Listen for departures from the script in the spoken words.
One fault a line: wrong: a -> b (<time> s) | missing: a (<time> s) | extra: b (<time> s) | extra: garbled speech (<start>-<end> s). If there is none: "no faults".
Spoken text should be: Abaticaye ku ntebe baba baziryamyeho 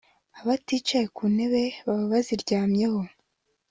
no faults